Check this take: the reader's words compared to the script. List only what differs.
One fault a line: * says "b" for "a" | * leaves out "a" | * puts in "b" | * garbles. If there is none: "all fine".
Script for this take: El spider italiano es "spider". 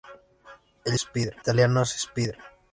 all fine